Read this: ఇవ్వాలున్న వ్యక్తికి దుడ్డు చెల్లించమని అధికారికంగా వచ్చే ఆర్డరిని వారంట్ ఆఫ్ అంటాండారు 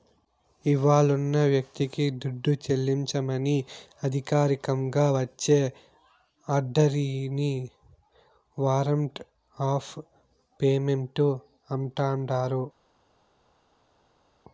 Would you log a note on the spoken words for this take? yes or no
yes